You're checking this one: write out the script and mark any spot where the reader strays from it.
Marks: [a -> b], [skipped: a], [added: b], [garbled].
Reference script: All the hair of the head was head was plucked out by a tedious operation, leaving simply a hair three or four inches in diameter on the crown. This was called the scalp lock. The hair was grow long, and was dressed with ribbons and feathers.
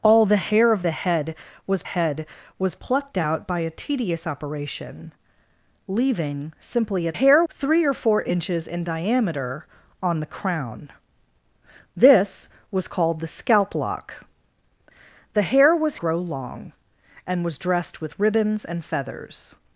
All the hair of the head was head was plucked out by a tedious operation, leaving simply a hair three or four inches in diameter on the crown. This was called the scalp lock. The hair was grow long, and was dressed with ribbons and feathers.